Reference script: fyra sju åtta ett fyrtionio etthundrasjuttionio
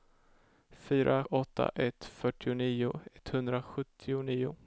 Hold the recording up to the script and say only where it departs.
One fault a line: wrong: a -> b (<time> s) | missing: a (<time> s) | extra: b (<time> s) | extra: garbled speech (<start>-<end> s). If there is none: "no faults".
missing: sju (1.2 s)